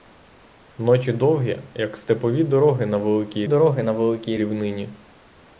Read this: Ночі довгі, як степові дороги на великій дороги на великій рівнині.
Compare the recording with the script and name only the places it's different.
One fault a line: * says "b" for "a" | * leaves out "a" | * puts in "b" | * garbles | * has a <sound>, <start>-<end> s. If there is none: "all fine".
all fine